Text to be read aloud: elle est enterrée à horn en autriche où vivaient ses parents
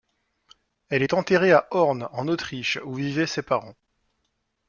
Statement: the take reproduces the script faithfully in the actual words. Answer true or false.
true